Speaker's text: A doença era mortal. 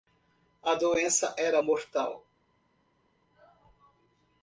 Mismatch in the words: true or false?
false